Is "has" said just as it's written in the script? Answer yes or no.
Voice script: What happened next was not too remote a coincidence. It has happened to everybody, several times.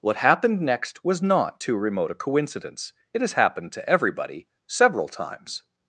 yes